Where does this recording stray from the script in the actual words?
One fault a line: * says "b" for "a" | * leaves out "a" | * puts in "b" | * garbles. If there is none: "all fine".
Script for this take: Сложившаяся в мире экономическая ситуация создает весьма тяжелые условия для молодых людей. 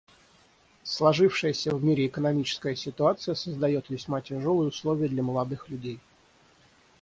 all fine